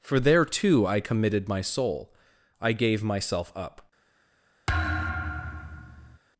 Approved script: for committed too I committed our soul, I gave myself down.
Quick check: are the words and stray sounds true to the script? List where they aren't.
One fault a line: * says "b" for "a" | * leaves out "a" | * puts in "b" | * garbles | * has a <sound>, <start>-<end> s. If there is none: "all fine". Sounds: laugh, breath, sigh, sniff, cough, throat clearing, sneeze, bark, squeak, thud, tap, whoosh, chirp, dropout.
* says "there" for "committed"
* says "my" for "our"
* says "up" for "down"
* has a thud, 4.7-6.2 s